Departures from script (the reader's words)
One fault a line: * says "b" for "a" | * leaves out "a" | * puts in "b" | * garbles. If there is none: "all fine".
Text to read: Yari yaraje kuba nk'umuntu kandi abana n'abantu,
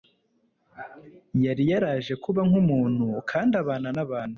all fine